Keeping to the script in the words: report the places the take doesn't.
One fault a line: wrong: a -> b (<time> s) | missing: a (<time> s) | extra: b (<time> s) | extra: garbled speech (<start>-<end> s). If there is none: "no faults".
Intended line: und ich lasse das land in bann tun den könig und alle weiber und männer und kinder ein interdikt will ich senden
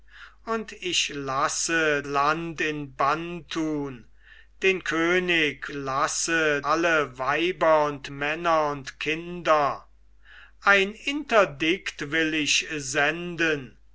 missing: das (2.0 s)
wrong: und -> lasse (5.7 s)